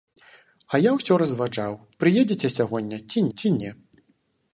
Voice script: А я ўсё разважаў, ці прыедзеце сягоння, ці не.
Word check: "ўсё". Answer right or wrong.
right